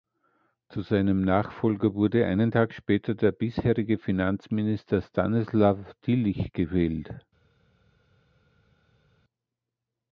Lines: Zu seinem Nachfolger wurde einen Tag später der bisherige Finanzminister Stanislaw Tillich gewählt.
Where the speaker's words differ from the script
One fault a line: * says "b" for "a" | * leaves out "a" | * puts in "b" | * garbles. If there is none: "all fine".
all fine